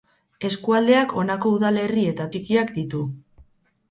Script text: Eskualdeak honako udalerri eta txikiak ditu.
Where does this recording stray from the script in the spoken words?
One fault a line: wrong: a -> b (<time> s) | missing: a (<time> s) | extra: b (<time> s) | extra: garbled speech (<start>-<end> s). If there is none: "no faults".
no faults